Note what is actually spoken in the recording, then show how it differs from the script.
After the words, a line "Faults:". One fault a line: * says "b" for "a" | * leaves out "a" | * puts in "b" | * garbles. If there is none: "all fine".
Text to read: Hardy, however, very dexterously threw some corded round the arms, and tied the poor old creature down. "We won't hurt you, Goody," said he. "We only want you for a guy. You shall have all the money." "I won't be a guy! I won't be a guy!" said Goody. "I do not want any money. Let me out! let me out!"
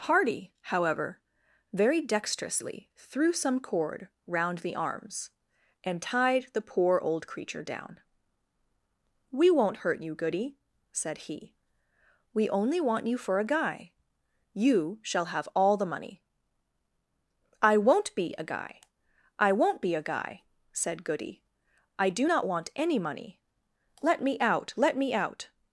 Hardy, however, very dexterously threw some cord round the arms, and tied the poor old creature down. "We won't hurt you, Goody," said he. "We only want you for a guy. You shall have all the money." "I won't be a guy! I won't be a guy!" said Goody. "I do not want any money. Let me out! let me out!"
Faults:
* says "cord" for "corded"